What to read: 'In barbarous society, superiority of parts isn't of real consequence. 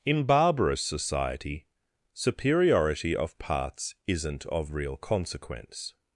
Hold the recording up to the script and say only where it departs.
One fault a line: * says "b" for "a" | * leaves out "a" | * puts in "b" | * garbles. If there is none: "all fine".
all fine